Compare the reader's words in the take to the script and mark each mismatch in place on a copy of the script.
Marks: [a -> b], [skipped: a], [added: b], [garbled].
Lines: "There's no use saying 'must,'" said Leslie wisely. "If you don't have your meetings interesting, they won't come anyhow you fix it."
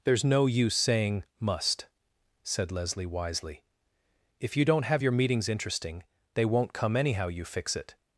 "There's no use saying 'must,'" said Leslie wisely. "If you don't have your meetings interesting, they won't come anyhow you fix it."